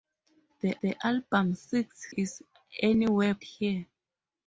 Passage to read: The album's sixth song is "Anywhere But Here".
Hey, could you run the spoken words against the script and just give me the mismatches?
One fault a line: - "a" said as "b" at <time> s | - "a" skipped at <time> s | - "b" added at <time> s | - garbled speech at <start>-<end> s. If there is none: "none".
- "the" added at 0.8 s
- "song" skipped at 2.1 s
- "But" skipped at 3.3 s